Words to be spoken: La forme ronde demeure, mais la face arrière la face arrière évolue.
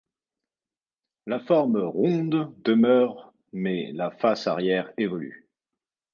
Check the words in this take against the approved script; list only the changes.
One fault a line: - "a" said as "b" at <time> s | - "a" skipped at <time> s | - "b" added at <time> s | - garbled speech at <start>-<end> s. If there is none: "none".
- "la face arrière" skipped at 4.9 s